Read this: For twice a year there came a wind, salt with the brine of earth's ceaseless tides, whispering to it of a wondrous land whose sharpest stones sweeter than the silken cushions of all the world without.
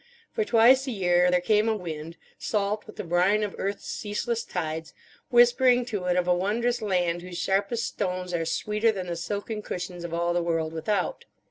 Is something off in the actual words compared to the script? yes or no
yes